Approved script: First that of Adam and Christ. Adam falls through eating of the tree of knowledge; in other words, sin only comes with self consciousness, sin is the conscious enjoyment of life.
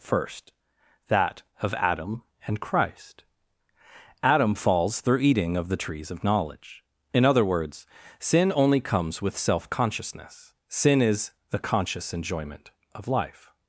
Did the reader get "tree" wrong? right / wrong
wrong